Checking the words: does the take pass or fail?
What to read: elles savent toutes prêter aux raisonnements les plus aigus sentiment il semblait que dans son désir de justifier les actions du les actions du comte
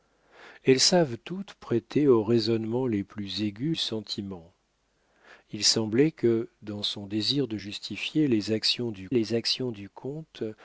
pass